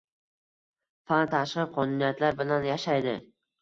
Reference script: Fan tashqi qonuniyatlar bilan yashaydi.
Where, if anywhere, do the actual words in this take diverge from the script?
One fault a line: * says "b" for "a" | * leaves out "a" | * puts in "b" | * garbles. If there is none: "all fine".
all fine